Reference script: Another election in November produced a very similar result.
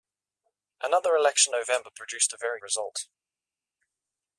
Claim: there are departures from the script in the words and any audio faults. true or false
true